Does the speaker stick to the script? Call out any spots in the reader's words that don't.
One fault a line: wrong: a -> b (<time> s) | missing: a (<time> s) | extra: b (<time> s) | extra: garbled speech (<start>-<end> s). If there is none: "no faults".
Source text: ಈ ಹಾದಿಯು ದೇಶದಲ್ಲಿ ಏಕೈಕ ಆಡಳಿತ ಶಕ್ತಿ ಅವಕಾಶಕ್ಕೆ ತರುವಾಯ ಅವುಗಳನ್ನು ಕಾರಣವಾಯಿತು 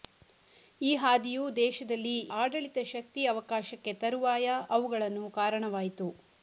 missing: ಏಕೈಕ (2.1 s)